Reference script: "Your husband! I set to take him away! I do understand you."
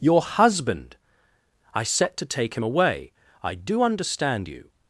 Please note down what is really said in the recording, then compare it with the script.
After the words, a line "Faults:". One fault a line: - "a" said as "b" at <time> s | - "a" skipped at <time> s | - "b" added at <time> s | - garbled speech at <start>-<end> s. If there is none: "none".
"Your husband! I set to take him away! I do understand you."
Faults:
none